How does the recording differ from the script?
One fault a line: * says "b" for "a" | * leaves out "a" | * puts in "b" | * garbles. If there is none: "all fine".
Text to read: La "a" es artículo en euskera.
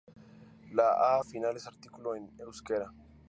* puts in "final"